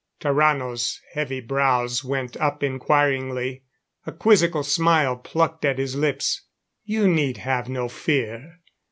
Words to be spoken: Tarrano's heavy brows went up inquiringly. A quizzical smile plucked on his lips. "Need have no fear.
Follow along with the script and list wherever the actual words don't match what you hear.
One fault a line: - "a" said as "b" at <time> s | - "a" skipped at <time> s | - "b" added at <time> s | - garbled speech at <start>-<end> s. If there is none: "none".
- "on" said as "at" at 5.6 s
- "You" added at 6.8 s